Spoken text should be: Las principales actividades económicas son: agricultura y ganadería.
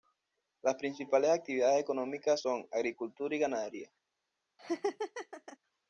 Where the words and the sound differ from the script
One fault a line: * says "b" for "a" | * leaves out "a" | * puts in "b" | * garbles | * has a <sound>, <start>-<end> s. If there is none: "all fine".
* has a laugh, 4.6-5.6 s